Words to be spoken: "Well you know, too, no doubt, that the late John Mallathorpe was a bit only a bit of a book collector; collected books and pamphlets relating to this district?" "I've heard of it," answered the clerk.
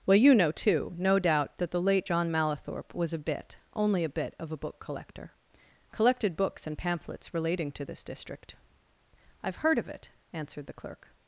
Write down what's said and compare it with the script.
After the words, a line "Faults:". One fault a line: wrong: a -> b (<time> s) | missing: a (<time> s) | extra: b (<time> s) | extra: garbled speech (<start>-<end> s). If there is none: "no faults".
"Well you know, too, no doubt, that the late John Mallathorpe was a bit only a bit of a book collector; collected books and pamphlets relating to this district?" "I've heard of it," answered the clerk.
Faults:
no faults